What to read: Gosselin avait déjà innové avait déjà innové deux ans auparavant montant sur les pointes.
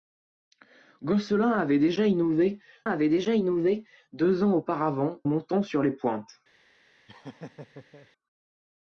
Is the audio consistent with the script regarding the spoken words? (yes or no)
yes